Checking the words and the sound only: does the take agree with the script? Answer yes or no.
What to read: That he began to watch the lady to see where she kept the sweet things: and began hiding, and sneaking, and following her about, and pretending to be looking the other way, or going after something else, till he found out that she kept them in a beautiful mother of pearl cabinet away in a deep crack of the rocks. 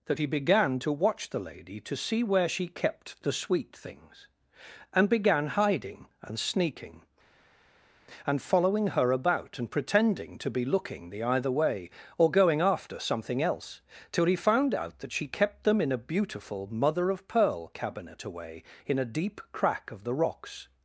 no